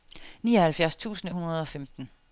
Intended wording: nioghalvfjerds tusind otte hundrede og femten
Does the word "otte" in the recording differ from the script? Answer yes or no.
yes